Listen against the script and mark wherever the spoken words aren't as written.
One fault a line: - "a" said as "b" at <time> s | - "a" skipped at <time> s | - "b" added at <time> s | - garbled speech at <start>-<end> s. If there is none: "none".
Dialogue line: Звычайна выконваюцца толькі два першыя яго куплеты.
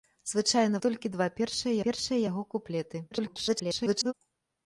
- "выконваюцца" skipped at 0.8 s
- "першыя" added at 1.9 s
- garbled speech at 3.1-4.1 s